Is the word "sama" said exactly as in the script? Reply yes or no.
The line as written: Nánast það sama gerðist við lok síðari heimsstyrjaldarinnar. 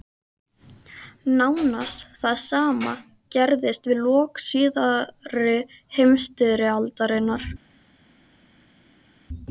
yes